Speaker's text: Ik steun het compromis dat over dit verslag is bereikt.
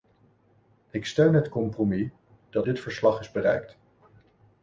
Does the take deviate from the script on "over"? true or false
true